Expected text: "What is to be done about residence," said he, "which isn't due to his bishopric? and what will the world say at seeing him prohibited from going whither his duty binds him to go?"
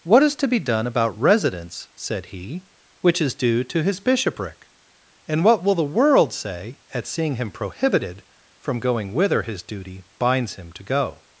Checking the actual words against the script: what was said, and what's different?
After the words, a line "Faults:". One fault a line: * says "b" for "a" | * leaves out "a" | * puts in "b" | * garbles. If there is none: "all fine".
"What is to be done about residence," said he, "which is due to his bishopric? and what will the world say at seeing him prohibited from going whither his duty binds him to go?"
Faults:
* says "is" for "isn't"